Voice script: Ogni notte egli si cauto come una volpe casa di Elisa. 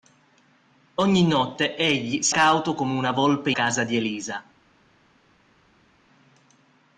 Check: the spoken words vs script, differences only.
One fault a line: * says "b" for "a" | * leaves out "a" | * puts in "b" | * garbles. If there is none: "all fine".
all fine